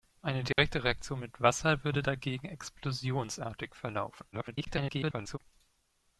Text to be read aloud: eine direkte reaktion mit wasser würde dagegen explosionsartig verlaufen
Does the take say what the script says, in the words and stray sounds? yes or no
no